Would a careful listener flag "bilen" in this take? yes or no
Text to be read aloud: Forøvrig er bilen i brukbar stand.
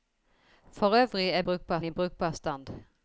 yes